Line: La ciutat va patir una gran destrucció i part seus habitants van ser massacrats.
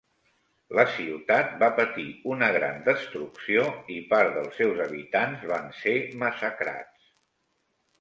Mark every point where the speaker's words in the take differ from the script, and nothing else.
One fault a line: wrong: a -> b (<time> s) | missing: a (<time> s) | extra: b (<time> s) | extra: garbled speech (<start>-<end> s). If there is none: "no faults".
extra: dels (4.4 s)